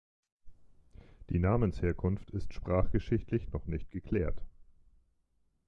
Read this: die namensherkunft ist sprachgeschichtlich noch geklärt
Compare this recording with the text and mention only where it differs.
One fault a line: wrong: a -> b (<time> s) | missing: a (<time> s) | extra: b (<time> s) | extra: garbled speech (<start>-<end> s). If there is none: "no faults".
extra: nicht (3.7 s)